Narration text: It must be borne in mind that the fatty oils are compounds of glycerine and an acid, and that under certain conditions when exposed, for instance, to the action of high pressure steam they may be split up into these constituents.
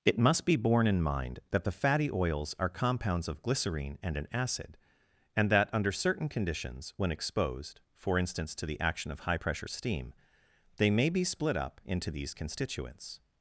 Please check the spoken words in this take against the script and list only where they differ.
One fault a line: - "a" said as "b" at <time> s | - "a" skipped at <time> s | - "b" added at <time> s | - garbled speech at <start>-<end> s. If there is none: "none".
none